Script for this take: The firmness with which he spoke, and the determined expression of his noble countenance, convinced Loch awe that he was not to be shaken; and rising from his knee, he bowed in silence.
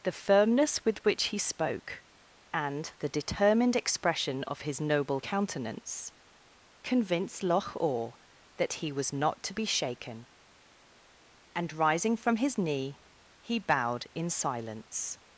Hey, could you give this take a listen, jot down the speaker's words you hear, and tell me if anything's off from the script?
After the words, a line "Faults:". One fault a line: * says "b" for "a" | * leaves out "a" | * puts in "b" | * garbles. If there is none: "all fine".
The firmness with which he spoke, and the determined expression of his noble countenance, convinced Loch awe that he was not to be shaken; and rising from his knee, he bowed in silence.
Faults:
all fine